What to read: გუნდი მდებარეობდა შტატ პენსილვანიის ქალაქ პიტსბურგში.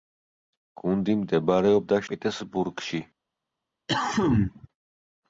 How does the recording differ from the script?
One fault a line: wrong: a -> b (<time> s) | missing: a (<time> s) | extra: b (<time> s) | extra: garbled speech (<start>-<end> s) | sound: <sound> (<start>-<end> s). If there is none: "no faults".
missing: შტატ პენსილვანიის ქალაქ (2.0 s)
sound: cough (3.9-4.7 s)